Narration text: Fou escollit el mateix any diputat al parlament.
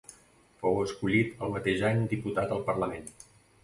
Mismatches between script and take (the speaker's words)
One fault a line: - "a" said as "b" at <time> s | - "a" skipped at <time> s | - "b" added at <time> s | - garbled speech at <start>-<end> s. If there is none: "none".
none